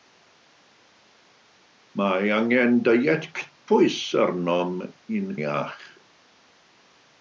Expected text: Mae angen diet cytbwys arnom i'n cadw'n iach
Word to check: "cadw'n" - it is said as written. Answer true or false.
false